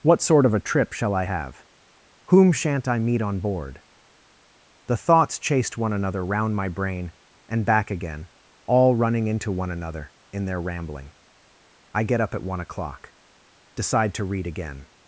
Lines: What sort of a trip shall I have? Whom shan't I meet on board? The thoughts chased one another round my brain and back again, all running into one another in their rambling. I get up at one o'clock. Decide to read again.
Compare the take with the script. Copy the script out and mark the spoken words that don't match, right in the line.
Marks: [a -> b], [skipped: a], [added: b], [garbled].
What sort of a trip shall I have? Whom shan't I meet on board? The thoughts chased one another round my brain and back again, all running into one another in their rambling. I get up at one o'clock. Decide to read again.